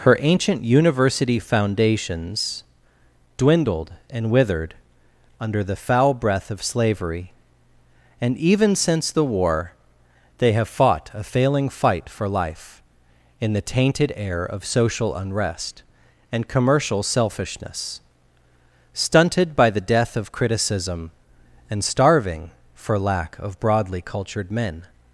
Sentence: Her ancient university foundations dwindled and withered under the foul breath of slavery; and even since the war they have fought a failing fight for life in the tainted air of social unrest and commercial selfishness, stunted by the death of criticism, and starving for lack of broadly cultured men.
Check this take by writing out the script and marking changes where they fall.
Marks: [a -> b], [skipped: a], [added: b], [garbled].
Her ancient university foundations dwindled and withered under the foul breath of slavery; and even since the war they have fought a failing fight for life in the tainted air of social unrest and commercial selfishness, stunted by the death of criticism, and starving for lack of broadly cultured men.